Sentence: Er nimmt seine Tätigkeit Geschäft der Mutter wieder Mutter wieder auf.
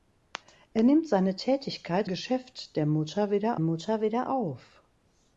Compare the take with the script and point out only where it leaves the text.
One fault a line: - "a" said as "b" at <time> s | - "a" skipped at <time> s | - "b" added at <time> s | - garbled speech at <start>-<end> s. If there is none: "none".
none